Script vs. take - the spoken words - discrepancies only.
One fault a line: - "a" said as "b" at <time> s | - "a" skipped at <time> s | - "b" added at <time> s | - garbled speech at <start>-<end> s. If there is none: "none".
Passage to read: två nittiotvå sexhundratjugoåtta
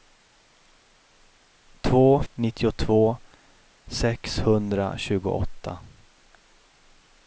none